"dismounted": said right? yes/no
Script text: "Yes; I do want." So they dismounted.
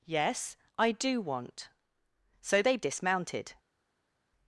yes